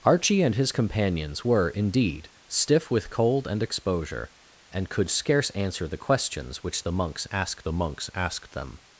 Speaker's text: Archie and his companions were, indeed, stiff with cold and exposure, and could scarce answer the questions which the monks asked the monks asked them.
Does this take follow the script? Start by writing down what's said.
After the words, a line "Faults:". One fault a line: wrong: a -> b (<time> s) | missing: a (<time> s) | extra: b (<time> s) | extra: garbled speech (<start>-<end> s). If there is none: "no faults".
Archie and his companions were, indeed, stiff with cold and exposure, and could scarce answer the questions which the monks asked the monks asked them.
Faults:
no faults